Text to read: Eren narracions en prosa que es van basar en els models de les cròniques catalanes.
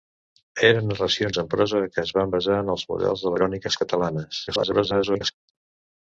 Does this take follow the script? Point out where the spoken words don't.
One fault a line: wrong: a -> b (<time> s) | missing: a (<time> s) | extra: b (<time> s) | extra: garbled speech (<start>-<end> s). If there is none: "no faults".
missing: les (3.3 s)
extra: garbled speech (4.5-5.3 s)